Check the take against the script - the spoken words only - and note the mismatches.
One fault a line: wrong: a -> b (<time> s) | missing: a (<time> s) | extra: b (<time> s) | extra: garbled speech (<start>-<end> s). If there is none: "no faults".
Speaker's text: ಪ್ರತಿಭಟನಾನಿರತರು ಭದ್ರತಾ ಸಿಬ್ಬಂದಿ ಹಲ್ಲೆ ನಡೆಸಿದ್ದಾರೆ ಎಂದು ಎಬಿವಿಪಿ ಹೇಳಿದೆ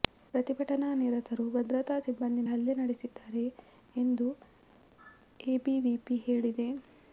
no faults